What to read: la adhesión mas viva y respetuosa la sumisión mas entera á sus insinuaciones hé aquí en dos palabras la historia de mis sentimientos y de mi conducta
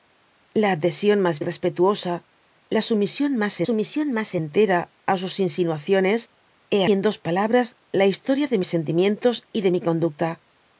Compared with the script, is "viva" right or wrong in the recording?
wrong